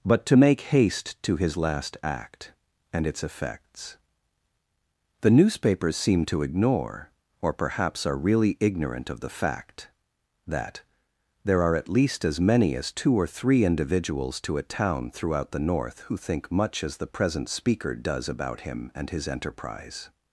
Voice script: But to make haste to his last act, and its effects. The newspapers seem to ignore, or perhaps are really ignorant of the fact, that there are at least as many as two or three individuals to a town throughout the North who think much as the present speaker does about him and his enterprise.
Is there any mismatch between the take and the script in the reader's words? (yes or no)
no